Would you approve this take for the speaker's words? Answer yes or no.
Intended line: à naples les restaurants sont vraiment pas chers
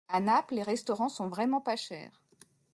yes